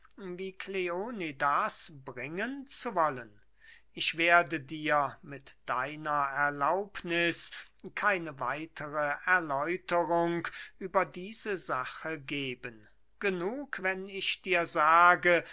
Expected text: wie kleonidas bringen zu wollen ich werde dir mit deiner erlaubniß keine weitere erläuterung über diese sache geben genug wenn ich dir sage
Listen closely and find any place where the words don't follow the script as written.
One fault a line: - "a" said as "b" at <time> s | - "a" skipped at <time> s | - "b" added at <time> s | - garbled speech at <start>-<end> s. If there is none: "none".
none